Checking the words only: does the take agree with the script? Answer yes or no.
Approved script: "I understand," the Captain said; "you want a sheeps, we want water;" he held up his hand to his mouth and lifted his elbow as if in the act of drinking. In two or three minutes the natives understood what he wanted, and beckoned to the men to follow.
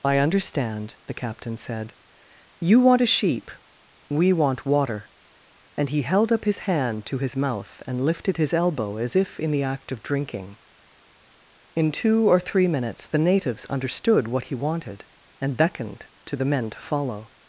no